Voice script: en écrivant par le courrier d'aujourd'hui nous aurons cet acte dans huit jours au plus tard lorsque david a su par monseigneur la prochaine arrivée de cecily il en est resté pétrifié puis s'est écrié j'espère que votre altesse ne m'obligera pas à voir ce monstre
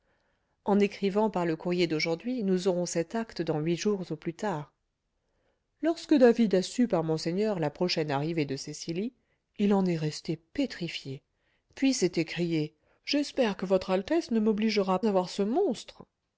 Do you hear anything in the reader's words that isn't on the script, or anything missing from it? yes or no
yes